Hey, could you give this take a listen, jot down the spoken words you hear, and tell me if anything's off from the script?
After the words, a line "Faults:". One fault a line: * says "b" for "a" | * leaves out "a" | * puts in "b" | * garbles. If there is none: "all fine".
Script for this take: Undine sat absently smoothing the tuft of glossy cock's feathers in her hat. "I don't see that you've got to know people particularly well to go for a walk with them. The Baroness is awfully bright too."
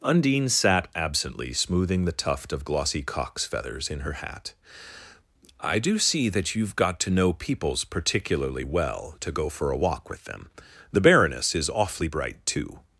Undine sat absently smoothing the tuft of glossy cock's feathers in her hat. "I do see that you've got to know peoples particularly well to go for a walk with them. The Baroness is awfully bright too."
Faults:
* says "do" for "don't"
* says "peoples" for "people"